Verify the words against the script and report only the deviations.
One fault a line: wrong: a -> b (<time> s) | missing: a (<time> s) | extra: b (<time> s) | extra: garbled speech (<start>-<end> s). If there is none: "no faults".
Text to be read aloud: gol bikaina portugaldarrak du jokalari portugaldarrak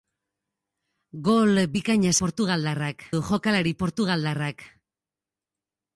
no faults